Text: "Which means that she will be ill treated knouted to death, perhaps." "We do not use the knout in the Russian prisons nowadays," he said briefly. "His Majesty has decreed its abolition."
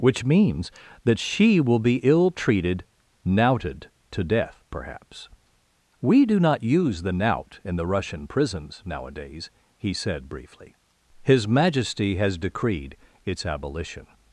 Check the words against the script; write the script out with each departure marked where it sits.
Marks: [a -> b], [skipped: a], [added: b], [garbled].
"Which means that she will be ill treated knouted to death, perhaps." "We do not use the knout in the Russian prisons nowadays," he said briefly. "His Majesty has decreed its abolition."